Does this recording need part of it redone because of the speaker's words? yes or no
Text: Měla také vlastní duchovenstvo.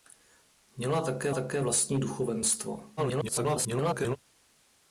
yes